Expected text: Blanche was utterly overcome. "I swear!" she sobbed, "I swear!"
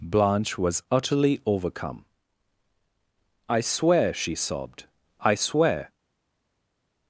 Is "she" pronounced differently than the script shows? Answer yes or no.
no